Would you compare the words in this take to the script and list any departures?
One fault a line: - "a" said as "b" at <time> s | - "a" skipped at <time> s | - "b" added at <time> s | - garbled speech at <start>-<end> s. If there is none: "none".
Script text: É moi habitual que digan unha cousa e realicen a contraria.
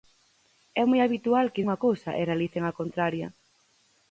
- "digan" skipped at 1.6 s